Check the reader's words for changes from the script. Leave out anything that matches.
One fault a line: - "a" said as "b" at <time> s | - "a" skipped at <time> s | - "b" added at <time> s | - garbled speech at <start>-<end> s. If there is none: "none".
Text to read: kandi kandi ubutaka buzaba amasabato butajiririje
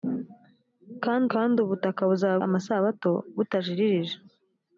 none